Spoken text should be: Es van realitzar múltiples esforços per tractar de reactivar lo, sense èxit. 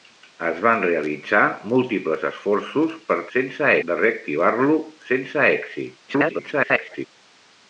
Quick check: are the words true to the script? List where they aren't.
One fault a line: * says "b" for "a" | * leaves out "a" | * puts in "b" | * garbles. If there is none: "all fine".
* says "sense" for "tractar"
* garbles